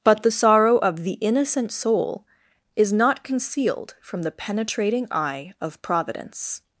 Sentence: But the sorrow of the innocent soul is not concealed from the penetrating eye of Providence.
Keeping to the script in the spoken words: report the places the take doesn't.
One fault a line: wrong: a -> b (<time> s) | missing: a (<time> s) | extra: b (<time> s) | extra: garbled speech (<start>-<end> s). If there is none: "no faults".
no faults